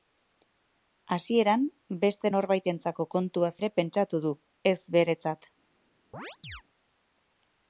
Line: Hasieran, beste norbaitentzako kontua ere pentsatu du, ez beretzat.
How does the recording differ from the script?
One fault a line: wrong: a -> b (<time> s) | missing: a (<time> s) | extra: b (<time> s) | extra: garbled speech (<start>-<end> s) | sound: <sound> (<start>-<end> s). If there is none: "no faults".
sound: chirp (6.1-6.6 s)